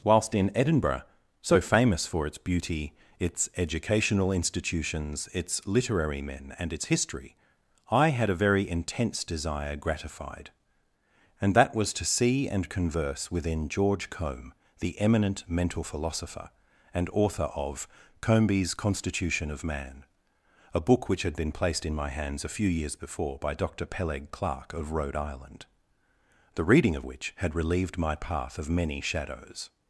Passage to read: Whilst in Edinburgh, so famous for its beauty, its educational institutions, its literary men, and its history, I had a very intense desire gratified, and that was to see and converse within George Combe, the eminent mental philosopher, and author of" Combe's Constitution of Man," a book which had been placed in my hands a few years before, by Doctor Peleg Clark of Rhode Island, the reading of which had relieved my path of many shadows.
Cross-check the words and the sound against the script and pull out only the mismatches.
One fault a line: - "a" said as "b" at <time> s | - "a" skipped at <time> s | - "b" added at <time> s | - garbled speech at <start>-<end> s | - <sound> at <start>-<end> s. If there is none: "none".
none